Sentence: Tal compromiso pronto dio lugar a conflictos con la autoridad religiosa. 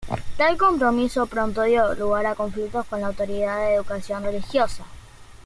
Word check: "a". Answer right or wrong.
right